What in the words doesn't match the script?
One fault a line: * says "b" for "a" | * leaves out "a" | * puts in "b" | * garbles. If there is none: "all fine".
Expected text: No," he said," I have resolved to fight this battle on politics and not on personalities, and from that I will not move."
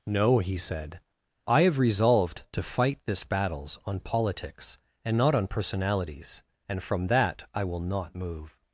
* says "battles" for "battle"